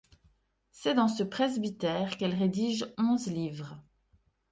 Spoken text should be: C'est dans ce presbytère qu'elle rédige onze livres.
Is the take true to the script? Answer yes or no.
yes